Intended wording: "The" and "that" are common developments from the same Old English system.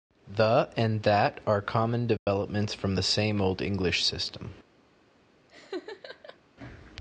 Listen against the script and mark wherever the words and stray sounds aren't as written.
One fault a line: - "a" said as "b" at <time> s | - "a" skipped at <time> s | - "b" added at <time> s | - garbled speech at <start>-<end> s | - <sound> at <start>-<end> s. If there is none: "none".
- dropout at 2.2-2.3 s
- laugh at 5.5-6.4 s